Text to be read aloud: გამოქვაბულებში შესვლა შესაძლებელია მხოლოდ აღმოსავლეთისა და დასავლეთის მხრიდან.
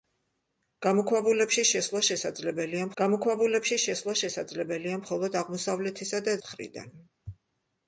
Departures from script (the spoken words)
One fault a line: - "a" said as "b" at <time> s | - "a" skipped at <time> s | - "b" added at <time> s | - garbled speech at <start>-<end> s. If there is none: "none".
- "გამოქვაბულებში შესვლა შესაძლებელია" added at 3.0 s
- "დასავლეთის" skipped at 6.4 s